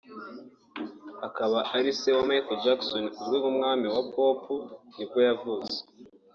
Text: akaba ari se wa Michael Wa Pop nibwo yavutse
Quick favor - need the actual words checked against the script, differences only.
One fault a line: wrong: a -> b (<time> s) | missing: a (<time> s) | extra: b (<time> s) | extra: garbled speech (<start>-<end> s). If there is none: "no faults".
extra: Jackson uzwi nk'umwami (2.6 s)